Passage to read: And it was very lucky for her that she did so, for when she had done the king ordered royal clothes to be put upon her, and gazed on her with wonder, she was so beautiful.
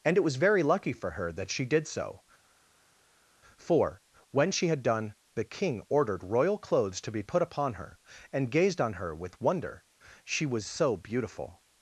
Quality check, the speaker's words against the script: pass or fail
pass